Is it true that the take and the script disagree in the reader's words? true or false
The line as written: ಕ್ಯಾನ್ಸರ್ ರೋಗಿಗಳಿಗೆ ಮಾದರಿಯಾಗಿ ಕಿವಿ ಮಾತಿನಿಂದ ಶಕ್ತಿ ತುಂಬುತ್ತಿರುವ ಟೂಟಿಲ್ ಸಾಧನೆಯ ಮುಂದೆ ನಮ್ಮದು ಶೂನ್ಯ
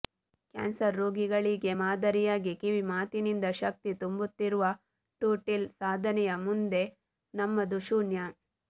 false